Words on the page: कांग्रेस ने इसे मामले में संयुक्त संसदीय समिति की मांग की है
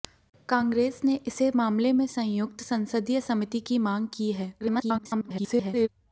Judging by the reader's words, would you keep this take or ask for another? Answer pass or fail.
fail